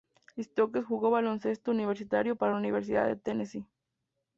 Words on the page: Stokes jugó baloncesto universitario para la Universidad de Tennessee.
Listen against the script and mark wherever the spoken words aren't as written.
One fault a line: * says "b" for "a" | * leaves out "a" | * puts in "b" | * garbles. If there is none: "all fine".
all fine